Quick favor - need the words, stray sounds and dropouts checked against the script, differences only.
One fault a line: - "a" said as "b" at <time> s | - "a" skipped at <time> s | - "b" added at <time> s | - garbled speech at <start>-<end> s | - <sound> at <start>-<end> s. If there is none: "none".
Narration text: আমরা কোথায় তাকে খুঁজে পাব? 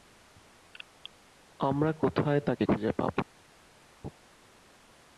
none